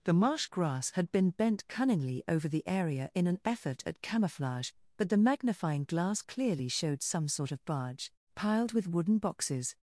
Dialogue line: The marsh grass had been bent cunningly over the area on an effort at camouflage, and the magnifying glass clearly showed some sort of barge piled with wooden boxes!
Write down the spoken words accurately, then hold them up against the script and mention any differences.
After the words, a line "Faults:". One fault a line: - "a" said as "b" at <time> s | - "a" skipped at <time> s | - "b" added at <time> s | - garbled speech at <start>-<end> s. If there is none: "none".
The marsh grass had been bent cunningly over the area in an effort at camouflage, but the magnifying glass clearly showed some sort of barge piled with wooden boxes!
Faults:
- "on" said as "in" at 3.1 s
- "and" said as "but" at 5.0 s